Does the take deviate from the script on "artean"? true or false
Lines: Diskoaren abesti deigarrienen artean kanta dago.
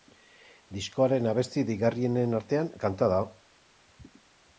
false